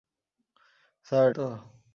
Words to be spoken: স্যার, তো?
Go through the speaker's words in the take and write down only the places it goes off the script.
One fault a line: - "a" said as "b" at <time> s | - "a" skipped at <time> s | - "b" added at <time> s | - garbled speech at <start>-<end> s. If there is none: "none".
none